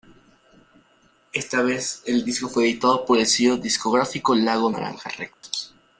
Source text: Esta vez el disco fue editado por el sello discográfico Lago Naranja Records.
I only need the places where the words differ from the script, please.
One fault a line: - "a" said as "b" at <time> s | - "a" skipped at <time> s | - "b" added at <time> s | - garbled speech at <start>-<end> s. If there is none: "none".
none